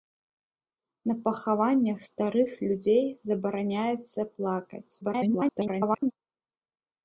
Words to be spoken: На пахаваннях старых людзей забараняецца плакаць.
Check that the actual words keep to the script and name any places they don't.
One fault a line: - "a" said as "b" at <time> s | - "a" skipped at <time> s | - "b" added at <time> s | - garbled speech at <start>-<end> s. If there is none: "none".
- garbled speech at 5.0-6.1 s